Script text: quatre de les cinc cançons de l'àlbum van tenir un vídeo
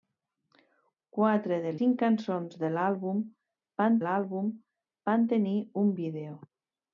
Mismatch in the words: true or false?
true